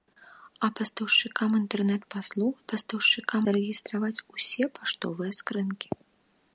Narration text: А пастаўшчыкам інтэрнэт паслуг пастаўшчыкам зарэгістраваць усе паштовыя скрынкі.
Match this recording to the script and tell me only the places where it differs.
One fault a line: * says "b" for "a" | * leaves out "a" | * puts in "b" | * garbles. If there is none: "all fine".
all fine